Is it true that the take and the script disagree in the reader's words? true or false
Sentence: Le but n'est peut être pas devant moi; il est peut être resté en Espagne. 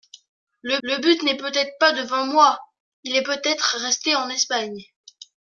true